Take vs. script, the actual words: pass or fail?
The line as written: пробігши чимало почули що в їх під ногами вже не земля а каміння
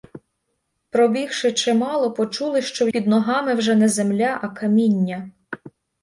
fail